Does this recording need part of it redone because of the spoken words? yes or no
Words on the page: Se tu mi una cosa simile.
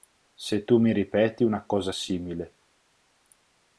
yes